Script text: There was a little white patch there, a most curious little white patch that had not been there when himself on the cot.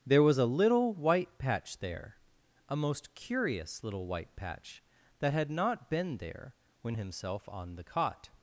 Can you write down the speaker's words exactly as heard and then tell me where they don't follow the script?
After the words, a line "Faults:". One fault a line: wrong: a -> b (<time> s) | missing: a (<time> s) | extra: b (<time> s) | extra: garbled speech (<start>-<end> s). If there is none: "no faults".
There was a little white patch there, a most curious little white patch that had not been there when himself on the cot.
Faults:
no faults